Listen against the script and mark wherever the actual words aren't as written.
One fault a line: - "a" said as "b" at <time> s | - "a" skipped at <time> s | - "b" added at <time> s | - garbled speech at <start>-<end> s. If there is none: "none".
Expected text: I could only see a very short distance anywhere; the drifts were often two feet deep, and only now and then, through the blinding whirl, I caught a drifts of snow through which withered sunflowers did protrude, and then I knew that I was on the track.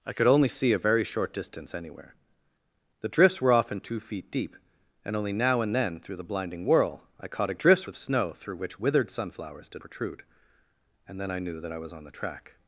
none